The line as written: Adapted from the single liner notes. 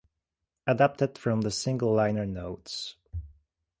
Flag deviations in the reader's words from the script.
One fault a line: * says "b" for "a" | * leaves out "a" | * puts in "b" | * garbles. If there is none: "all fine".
all fine